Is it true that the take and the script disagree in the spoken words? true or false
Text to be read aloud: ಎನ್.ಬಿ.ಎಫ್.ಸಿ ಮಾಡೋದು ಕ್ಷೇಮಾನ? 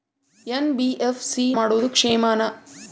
false